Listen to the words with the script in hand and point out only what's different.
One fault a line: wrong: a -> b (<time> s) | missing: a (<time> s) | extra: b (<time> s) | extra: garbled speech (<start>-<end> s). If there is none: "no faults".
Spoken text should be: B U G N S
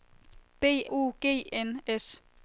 no faults